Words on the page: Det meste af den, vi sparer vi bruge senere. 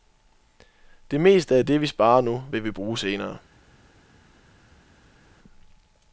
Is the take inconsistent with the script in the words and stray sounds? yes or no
yes